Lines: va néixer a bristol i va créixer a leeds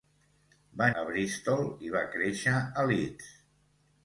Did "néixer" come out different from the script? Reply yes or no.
yes